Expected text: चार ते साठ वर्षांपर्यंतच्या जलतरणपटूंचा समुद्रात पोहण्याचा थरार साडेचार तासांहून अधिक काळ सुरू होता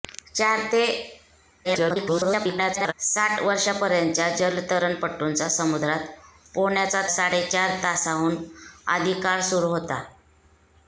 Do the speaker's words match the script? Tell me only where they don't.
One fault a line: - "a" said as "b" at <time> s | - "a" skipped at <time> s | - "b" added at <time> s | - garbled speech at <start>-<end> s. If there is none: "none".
- garbled speech at 1.6-2.9 s
- "थरार" skipped at 7.0 s